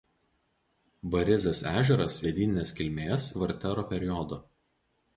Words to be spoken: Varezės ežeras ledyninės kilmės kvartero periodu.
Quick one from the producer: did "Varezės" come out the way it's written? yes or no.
yes